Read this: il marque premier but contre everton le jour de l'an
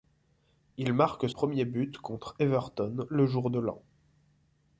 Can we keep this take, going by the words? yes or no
yes